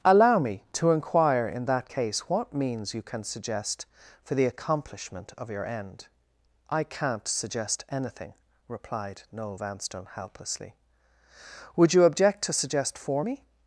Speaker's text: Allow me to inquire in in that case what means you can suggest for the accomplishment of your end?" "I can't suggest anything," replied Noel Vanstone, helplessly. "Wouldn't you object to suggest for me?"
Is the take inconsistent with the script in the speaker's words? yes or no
yes